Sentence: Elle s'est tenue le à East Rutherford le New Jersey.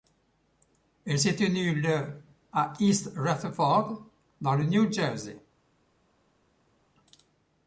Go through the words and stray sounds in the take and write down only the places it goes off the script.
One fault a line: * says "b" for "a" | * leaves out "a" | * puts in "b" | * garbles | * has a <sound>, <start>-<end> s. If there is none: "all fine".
* puts in "dans"